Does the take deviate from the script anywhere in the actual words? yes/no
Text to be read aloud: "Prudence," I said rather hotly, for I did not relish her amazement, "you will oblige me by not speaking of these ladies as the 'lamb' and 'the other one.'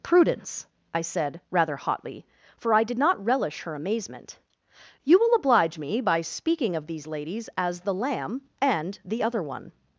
yes